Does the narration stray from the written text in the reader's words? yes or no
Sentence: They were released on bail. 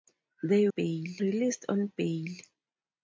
yes